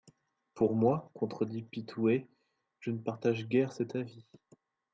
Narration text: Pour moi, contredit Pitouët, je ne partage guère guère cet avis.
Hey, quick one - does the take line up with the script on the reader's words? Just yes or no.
no